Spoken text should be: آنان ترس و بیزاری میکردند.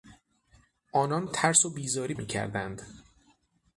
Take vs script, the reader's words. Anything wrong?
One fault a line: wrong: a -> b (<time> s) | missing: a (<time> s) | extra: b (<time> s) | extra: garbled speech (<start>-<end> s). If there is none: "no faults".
no faults